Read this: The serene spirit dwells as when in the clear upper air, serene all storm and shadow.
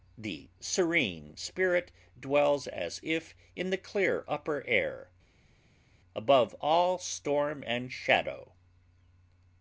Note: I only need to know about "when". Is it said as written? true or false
false